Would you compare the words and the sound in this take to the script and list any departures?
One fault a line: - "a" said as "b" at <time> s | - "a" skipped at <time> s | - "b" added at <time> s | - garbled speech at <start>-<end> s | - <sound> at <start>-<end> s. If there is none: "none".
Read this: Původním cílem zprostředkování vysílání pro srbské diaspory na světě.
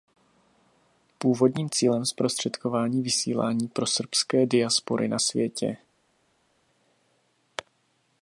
none